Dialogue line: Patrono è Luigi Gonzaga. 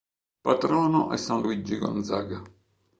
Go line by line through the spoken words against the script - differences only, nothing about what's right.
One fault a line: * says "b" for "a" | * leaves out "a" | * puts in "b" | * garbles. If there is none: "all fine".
* puts in "San"